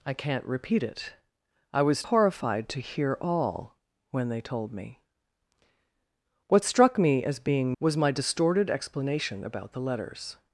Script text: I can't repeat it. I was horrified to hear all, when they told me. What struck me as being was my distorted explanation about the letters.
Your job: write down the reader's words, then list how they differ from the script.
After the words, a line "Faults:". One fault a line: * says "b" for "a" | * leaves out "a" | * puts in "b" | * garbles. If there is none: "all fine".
I can't repeat it. I was horrified to hear all, when they told me. What struck me as being was my distorted explanation about the letters.
Faults:
all fine